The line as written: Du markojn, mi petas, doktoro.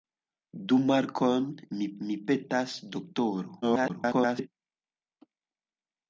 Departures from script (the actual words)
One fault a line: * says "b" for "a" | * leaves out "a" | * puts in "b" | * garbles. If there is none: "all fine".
* puts in "mi"
* garbles